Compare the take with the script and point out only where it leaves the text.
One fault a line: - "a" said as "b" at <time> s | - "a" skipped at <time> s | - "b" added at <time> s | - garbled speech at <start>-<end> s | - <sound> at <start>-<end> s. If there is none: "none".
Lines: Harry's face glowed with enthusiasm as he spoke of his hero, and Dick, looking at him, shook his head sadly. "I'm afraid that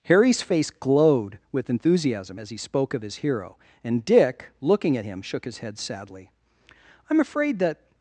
none